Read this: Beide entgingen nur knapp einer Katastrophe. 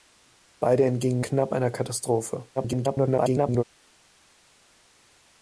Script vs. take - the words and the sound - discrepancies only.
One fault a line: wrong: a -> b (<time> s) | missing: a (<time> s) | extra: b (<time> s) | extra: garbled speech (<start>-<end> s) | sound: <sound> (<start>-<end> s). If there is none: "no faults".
missing: nur (1.2 s)
extra: garbled speech (2.6-3.6 s)